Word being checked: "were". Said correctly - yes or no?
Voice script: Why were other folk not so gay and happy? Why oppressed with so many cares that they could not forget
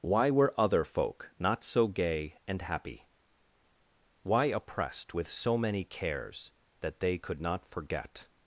yes